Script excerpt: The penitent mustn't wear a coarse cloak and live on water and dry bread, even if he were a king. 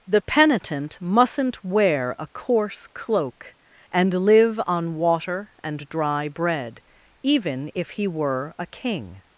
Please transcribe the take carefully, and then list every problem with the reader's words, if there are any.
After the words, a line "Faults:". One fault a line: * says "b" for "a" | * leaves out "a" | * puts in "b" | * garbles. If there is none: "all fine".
The penitent mustn't wear a coarse cloak and live on water and dry bread, even if he were a king.
Faults:
all fine